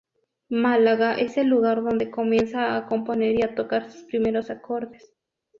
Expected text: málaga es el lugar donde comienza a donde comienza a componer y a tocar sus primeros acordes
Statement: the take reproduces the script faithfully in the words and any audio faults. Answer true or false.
false